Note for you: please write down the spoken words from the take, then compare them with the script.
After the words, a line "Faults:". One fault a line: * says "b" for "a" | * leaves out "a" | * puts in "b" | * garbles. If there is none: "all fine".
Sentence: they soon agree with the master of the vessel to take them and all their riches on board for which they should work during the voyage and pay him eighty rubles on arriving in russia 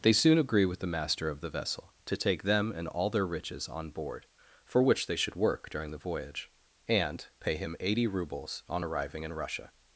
they soon agree with the master of the vessel to take them and all their riches on board for which they should work during the voyage and pay him eighty rubles on arriving in russia
Faults:
all fine